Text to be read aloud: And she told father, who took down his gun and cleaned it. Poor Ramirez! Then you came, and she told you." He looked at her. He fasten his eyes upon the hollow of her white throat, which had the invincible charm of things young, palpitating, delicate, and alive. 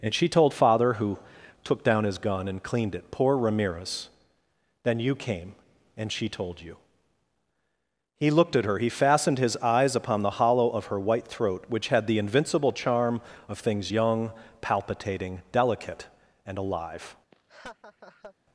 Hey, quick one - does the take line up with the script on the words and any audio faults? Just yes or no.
no